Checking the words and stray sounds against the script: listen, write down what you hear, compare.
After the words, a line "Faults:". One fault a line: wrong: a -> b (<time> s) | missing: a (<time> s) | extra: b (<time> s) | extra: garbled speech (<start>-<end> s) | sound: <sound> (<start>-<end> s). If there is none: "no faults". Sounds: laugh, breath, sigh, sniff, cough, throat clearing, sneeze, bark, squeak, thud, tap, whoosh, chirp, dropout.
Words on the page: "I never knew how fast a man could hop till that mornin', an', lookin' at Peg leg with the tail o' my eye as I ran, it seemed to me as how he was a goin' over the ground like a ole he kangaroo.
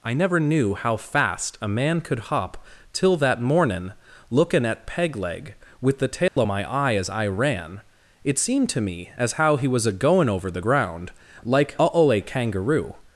"I never knew how fast a man could hop till that mornin', lookin' at Peg leg with the tail o' my eye as I ran, it seemed to me as how he was a goin' over the ground like a ole kangaroo.
Faults:
missing: an (3.9 s)
sound: dropout (6.3-6.4 s)
missing: he (12.2 s)